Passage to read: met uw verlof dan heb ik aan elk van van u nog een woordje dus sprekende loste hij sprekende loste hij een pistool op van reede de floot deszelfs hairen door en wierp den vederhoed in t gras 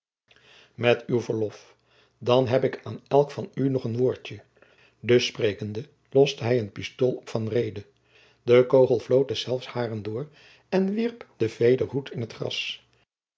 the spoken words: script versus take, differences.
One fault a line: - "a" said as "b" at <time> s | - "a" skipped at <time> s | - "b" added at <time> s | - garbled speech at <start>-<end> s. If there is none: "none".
- "van" skipped at 3.5 s
- "sprekende loste hij" skipped at 6.6 s
- "kogel" added at 8.7 s